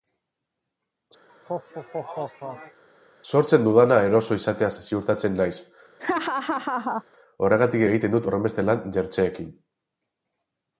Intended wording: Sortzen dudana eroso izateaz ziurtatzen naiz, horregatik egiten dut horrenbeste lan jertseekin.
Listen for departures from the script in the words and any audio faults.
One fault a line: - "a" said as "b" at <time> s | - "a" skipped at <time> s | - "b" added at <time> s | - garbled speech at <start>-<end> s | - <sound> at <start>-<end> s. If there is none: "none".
- laugh at 1.3-2.8 s
- laugh at 6.0-7.0 s